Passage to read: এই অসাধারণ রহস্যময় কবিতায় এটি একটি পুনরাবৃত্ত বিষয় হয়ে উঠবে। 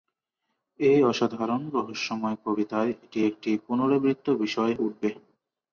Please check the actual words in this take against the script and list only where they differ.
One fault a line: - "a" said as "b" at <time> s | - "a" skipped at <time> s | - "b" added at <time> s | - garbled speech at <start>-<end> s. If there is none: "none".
- "হয়ে" skipped at 4.7 s